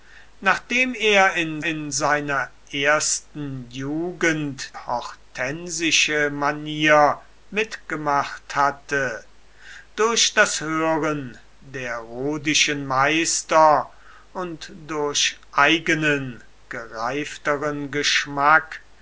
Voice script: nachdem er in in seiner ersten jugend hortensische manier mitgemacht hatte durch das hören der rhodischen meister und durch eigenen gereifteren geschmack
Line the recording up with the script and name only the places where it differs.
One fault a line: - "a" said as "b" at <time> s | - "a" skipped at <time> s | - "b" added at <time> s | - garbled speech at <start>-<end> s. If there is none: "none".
none